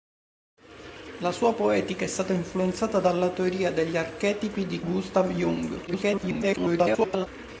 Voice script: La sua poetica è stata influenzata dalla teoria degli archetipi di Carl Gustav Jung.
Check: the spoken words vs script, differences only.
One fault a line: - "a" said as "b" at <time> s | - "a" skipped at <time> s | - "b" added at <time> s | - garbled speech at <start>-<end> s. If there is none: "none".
- "Carl" skipped at 4.8 s
- garbled speech at 5.9-7.3 s